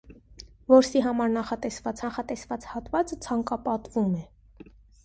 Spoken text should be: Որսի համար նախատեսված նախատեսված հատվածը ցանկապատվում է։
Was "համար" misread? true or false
false